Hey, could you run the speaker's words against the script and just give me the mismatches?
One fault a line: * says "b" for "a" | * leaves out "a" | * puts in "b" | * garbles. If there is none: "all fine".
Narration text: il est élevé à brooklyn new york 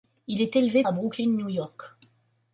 all fine